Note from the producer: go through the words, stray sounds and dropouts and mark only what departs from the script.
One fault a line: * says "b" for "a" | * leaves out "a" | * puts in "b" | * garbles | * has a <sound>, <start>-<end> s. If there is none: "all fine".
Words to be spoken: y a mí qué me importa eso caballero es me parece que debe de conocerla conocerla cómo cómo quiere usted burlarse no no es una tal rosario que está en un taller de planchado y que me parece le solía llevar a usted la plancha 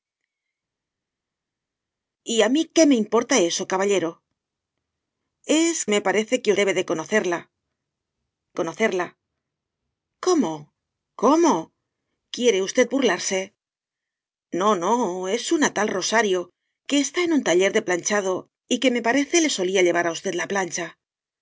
all fine